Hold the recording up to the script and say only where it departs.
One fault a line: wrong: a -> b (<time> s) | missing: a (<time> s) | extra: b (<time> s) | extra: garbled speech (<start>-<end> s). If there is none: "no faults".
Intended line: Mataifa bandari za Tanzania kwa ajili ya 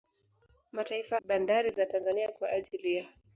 no faults